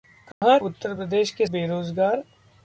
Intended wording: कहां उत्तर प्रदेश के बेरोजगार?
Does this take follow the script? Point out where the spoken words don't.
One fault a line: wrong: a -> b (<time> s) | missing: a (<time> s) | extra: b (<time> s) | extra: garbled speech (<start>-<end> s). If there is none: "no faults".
no faults